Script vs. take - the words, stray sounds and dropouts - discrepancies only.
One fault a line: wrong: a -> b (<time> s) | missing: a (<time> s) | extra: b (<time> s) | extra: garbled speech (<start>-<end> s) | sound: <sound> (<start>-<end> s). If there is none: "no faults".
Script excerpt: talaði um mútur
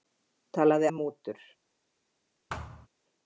sound: thud (2.5-2.9 s)